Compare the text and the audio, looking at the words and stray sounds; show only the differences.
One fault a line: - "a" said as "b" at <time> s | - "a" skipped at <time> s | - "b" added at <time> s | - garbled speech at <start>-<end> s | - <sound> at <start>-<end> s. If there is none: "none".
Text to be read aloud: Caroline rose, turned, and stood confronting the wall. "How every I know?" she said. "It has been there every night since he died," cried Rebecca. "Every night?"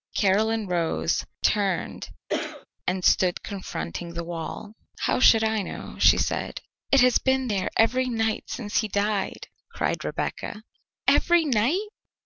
- cough at 2.3-2.7 s
- "every" said as "should" at 5.2 s